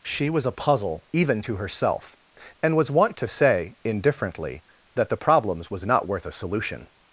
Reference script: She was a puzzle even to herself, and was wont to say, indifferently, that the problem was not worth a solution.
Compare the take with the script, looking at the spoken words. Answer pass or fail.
fail